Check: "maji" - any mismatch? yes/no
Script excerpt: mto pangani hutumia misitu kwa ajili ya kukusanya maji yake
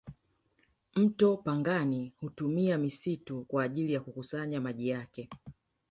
no